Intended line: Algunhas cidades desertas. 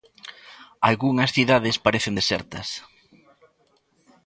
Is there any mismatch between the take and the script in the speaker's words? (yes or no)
yes